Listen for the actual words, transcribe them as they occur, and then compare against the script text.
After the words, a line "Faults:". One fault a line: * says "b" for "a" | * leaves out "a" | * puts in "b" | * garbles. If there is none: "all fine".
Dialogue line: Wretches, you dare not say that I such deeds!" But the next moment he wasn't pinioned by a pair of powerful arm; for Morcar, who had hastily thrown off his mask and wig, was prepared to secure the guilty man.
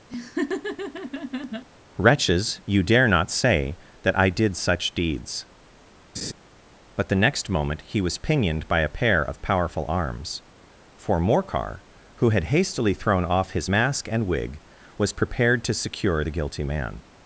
Wretches, you dare not say that I did such deeds!" But the next moment he was pinioned by a pair of powerful arms; for Morcar, who had hastily thrown off his mask and wig, was prepared to secure the guilty man.
Faults:
* puts in "did"
* says "was" for "wasn't"
* says "arms" for "arm"